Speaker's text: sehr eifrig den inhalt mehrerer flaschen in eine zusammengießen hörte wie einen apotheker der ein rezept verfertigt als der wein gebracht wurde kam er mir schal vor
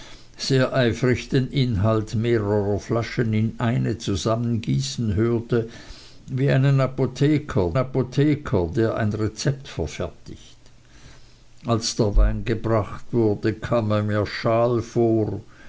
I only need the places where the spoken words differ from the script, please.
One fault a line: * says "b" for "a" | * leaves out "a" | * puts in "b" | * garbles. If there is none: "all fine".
* puts in "apotheker"